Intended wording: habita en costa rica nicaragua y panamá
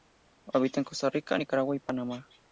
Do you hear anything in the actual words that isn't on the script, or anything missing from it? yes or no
no